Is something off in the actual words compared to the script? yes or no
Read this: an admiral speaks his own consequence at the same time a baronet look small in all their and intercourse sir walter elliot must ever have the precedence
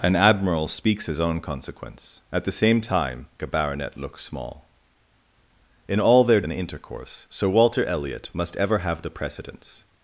no